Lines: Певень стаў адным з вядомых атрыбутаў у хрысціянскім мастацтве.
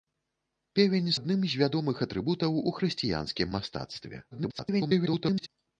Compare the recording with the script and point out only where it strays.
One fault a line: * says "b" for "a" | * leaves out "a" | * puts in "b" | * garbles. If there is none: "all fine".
* leaves out "стаў"
* garbles